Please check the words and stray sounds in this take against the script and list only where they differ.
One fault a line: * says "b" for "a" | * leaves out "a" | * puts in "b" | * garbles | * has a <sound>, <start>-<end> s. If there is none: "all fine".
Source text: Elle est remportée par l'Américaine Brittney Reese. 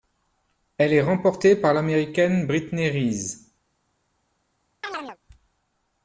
* has a chirp, 4.8-5.2 s